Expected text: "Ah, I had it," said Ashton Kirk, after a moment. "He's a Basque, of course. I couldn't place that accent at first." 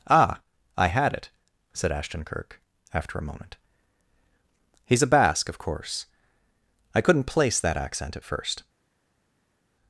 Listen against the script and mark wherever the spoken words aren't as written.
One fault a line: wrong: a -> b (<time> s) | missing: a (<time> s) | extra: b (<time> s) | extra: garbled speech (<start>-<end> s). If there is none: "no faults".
no faults